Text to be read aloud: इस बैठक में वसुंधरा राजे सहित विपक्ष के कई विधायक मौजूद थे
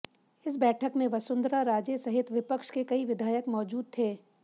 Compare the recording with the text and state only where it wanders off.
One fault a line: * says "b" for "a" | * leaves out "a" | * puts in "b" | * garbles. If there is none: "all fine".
all fine